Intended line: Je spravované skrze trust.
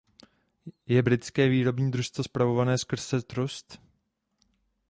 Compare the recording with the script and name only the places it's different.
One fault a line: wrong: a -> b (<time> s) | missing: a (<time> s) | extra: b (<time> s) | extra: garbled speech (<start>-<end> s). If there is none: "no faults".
extra: britské výrobní družstvo (1.0 s)